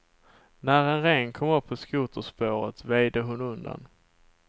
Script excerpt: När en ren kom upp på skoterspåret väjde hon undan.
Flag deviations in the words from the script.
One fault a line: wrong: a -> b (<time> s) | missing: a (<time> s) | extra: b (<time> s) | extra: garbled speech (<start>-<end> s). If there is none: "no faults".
no faults